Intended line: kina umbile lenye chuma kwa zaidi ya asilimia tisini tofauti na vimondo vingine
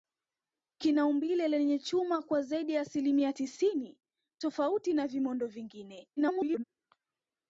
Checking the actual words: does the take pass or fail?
fail